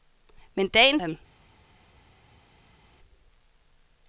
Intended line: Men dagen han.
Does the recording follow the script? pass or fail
pass